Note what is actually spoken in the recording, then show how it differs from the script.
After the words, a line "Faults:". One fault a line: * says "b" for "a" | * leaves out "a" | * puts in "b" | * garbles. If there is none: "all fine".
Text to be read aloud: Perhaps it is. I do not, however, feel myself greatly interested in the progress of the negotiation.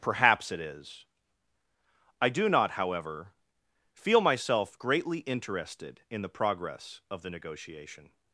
Perhaps it is. I do not, however, feel myself greatly interested in the progress of the negotiation.
Faults:
all fine